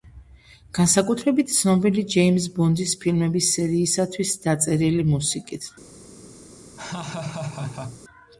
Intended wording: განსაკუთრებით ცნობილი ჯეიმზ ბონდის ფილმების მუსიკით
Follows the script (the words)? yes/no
no